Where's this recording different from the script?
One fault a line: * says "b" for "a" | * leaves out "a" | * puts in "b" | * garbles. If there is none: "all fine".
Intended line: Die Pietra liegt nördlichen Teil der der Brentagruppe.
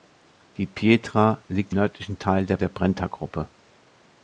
all fine